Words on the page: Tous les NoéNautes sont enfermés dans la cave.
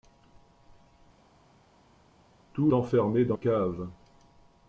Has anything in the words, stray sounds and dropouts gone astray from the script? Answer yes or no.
yes